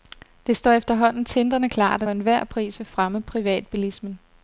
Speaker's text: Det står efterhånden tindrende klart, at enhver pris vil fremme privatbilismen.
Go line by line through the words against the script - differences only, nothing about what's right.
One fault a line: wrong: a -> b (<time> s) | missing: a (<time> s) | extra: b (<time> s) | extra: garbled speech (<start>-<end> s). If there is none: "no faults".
no faults